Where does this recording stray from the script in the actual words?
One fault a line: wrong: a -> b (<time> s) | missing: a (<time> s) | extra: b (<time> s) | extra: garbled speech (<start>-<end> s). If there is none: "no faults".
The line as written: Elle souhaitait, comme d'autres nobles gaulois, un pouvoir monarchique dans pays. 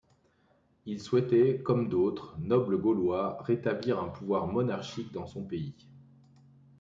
wrong: Elle -> Il (0.9 s)
extra: rétablir (3.4 s)
extra: son (5.3 s)